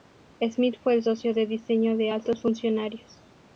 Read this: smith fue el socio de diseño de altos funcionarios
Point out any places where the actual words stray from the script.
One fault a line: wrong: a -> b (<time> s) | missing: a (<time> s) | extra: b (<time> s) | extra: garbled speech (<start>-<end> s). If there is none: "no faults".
no faults